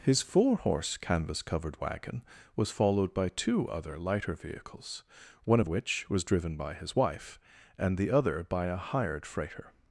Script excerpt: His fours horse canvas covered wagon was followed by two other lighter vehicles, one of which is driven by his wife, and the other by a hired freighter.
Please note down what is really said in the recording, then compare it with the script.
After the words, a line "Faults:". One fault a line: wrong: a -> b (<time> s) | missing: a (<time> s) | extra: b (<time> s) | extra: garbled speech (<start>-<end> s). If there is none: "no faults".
His four horse canvas covered wagon was followed by two other lighter vehicles, one of which was driven by his wife, and the other by a hired freighter.
Faults:
wrong: fours -> four (0.2 s)
wrong: is -> was (6.1 s)